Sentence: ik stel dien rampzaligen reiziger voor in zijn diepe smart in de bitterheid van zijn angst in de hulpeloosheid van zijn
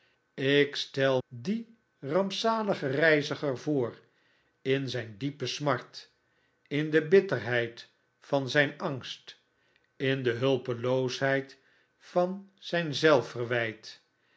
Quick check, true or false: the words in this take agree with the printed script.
true